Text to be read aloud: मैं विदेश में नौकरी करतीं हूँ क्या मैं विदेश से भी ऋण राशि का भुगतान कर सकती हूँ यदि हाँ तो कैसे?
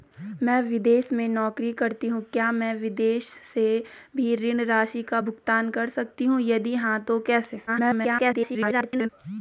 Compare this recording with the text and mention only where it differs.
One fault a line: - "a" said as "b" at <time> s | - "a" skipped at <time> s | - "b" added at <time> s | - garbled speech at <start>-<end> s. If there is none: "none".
- garbled speech at 7.7-9.1 s